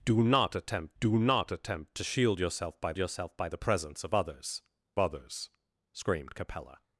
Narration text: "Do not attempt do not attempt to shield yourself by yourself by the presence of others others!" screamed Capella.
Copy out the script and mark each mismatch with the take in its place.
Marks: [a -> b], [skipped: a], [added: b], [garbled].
"Do not attempt do not attempt to shield yourself by yourself by the presence of others others!" screamed Capella.